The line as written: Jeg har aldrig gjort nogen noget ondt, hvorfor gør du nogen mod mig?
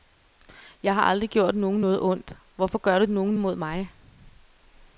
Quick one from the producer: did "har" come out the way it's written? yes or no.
yes